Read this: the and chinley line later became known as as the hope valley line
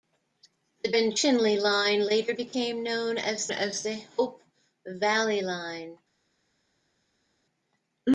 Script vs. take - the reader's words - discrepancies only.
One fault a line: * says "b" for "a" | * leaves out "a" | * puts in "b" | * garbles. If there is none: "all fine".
all fine